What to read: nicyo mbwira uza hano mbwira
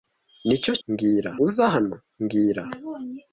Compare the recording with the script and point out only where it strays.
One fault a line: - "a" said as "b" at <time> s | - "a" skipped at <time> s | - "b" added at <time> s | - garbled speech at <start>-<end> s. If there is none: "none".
none